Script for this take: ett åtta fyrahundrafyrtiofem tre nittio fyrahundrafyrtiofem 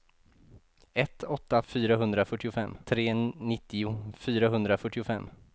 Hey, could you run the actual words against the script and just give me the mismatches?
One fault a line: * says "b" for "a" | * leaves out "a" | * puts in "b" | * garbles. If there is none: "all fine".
all fine